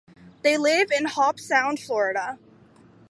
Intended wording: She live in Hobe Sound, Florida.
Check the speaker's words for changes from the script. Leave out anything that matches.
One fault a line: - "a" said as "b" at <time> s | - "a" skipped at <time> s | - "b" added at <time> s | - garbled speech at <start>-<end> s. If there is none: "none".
- "She" said as "They" at 0.4 s